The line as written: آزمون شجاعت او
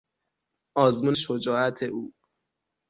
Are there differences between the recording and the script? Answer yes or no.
no